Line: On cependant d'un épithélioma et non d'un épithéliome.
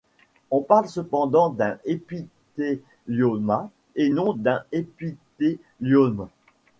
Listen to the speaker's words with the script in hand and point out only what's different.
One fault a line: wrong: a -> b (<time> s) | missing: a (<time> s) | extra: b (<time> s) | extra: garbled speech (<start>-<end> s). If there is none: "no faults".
extra: parle (0.6 s)